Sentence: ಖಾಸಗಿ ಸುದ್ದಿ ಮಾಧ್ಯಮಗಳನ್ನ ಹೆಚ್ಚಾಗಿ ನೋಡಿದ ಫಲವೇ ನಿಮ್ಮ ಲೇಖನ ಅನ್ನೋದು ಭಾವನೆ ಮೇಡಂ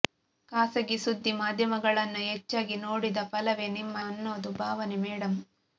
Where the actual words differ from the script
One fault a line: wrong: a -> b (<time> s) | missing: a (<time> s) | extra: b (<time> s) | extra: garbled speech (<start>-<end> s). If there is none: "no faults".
missing: ಲೇಖನ (4.0 s)